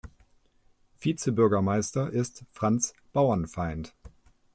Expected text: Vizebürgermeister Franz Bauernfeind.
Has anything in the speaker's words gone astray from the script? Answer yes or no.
yes